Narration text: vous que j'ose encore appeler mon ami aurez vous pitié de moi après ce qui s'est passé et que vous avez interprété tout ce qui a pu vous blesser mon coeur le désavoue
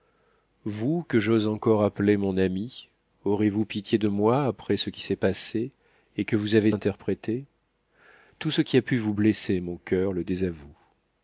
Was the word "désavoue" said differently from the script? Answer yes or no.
no